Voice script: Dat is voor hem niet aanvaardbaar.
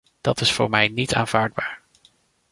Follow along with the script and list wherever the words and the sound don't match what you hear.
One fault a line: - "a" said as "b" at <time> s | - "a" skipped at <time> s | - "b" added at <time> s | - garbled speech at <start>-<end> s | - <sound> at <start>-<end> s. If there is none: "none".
- "hem" said as "mij" at 0.7 s